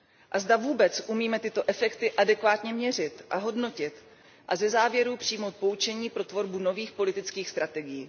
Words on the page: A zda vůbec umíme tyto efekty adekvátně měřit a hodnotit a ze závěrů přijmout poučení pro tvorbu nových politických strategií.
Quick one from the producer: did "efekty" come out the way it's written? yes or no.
yes